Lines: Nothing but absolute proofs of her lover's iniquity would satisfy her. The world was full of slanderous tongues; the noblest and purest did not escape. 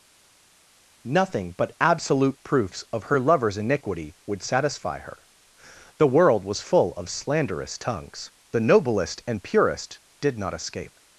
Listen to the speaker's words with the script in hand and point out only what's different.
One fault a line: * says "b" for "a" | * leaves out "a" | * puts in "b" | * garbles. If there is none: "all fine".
all fine